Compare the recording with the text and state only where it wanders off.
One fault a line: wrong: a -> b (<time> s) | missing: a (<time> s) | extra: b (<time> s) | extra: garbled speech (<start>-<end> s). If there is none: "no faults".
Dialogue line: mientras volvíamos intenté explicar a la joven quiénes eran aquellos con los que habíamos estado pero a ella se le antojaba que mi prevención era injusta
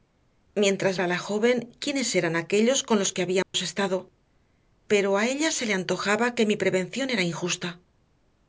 missing: volvíamos intenté explicar (1.0 s)